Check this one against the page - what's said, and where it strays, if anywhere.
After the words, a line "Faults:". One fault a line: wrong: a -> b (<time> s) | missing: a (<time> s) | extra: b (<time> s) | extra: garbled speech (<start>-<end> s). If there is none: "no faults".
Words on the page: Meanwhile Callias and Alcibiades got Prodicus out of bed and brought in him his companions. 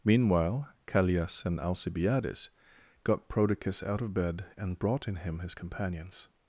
Meanwhile Callias and Alcibiades got Prodicus out of bed and brought in him his companions.
Faults:
no faults